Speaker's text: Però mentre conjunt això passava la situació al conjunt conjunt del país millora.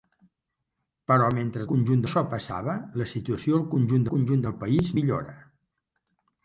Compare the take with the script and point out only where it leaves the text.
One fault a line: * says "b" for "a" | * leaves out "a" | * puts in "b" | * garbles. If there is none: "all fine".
all fine